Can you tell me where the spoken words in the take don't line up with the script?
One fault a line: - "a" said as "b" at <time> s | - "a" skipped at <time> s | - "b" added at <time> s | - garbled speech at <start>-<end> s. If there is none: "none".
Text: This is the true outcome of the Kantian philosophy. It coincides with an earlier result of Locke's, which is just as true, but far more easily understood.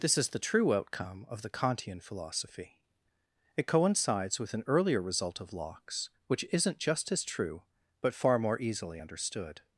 - "is" said as "isn't" at 6.5 s